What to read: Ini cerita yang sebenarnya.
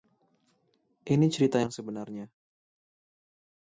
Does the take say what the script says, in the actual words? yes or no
yes